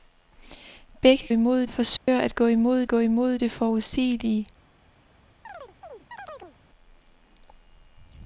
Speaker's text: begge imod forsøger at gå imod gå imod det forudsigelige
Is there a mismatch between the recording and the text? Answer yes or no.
no